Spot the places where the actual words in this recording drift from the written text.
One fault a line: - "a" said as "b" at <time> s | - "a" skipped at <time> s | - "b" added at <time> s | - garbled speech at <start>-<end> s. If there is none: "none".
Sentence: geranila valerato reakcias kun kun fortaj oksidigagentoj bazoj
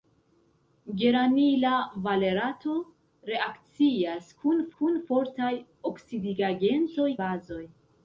none